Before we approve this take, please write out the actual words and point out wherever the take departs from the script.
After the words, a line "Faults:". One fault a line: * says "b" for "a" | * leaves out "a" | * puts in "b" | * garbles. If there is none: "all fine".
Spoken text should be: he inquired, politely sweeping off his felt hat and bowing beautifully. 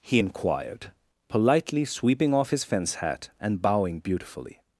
he inquired, politely sweeping off his fence hat and bowing beautifully.
Faults:
* says "fence" for "felt"